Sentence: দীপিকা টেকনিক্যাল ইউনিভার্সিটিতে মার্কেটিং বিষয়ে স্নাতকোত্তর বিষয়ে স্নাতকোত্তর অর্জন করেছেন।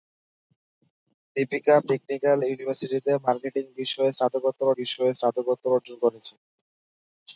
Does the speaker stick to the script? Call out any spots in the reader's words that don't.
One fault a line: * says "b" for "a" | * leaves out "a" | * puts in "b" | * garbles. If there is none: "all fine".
all fine